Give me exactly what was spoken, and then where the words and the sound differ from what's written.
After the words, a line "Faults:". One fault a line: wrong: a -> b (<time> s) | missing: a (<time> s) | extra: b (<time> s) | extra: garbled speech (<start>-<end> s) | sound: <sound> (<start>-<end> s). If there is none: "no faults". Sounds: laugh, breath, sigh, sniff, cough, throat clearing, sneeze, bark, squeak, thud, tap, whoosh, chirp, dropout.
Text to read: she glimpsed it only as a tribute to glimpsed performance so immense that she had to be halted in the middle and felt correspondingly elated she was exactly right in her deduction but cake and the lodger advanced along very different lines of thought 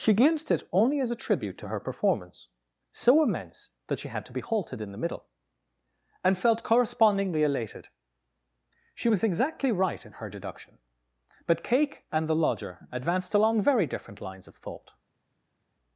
she glimpsed it only as a tribute to her performance so immense that she had to be halted in the middle and felt correspondingly elated she was exactly right in her deduction but cake and the lodger advanced along very different lines of thought
Faults:
wrong: glimpsed -> her (1.7 s)